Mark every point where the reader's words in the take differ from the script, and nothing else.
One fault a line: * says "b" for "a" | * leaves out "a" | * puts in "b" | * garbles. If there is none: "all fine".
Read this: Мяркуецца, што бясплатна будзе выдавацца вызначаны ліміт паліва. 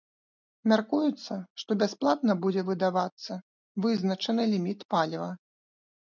all fine